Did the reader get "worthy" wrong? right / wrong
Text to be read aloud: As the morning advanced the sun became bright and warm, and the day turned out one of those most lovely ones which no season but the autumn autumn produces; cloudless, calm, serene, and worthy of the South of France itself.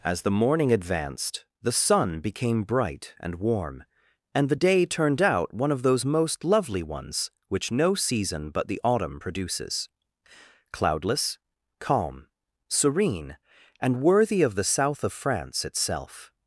right